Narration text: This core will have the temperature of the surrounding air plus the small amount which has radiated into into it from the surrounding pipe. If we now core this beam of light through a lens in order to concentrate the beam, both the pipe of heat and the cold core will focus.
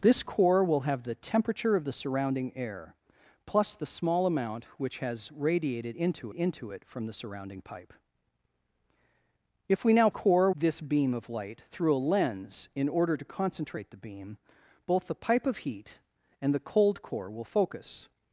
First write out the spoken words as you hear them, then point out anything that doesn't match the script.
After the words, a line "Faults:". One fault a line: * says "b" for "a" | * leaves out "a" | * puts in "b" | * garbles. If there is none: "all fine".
This core will have the temperature of the surrounding air plus the small amount which has radiated into into it from the surrounding pipe. If we now core this beam of light through a lens in order to concentrate the beam, both the pipe of heat and the cold core will focus.
Faults:
all fine